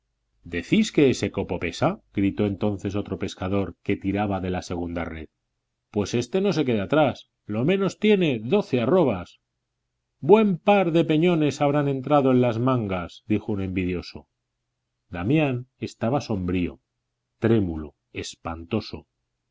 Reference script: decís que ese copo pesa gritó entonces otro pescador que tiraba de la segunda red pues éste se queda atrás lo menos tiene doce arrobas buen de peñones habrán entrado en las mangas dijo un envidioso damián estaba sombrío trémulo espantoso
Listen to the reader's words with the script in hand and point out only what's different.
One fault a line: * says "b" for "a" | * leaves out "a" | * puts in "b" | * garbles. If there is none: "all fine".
* puts in "no"
* puts in "par"